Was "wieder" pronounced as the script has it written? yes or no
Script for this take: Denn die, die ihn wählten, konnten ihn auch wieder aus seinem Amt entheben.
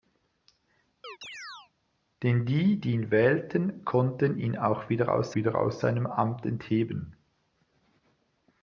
yes